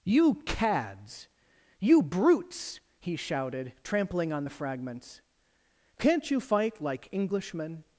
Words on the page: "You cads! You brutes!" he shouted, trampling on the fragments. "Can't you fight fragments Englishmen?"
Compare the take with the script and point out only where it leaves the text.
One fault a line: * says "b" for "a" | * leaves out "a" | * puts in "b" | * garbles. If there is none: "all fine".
* says "like" for "fragments"